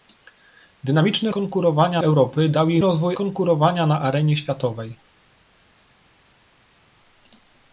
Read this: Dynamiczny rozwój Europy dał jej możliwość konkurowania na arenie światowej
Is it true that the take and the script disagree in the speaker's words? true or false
true